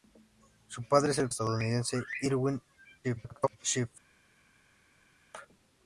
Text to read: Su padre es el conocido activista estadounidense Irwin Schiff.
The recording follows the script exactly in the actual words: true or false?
false